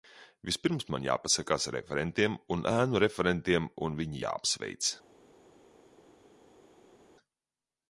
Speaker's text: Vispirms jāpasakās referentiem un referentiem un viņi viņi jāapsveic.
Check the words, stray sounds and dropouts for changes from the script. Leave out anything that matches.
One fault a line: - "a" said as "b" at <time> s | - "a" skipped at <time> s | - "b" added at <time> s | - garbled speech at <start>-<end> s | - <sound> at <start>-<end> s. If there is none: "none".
- "man" added at 0.9 s
- "ēnu" added at 2.7 s
- "viņi" skipped at 4.2 s